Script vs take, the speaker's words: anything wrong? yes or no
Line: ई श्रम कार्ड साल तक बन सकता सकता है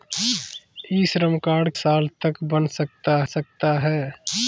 no